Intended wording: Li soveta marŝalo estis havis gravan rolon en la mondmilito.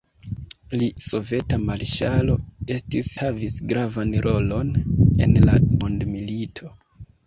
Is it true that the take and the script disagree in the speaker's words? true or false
false